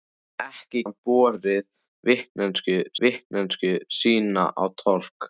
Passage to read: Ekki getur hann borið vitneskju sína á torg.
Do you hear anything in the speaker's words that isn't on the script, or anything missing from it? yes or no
yes